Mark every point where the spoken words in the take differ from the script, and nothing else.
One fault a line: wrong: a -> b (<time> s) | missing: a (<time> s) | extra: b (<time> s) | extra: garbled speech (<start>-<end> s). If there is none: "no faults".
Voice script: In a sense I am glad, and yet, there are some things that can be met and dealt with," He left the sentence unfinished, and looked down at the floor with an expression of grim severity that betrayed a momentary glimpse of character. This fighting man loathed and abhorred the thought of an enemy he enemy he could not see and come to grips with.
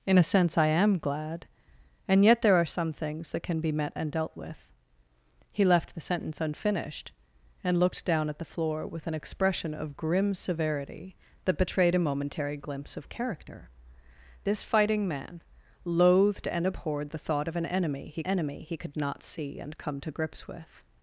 no faults